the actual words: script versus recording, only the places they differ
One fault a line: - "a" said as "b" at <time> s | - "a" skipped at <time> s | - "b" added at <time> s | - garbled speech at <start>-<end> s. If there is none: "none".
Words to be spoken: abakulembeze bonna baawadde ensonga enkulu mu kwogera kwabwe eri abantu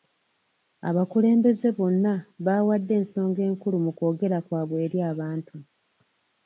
none